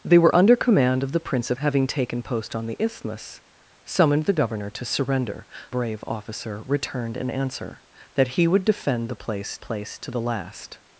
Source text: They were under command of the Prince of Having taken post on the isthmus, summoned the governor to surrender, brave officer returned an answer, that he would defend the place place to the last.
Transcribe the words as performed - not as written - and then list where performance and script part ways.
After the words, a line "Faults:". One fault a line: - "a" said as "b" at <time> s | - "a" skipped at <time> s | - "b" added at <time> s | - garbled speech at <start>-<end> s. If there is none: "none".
They were under command of the Prince of Having taken post on the isthmus, summoned the governor to surrender, brave officer returned an answer, that he would defend the place place to the last.
Faults:
none